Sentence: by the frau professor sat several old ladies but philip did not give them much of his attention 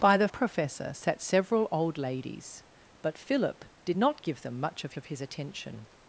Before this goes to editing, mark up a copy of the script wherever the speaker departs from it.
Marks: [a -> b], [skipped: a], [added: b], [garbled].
by the [skipped: frau] professor sat several old ladies but philip did not give them much of [added: of] his attention